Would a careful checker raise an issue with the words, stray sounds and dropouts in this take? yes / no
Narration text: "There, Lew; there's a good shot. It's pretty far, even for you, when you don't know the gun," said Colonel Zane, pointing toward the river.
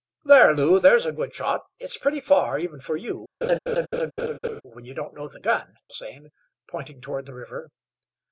yes